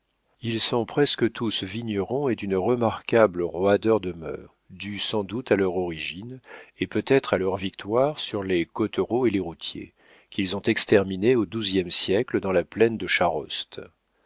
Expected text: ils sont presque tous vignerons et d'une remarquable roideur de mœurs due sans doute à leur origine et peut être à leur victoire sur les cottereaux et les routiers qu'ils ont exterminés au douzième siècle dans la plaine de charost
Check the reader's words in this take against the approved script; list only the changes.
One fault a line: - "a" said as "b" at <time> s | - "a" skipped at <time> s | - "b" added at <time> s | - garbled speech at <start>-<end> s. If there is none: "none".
none